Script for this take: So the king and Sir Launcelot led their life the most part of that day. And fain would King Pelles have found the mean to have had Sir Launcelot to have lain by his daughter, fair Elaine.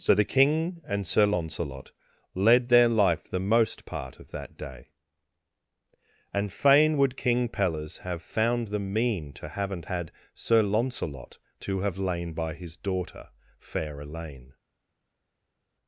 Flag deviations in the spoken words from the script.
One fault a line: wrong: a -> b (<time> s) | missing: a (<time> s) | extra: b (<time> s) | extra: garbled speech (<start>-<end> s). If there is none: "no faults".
wrong: have -> haven't (9.5 s)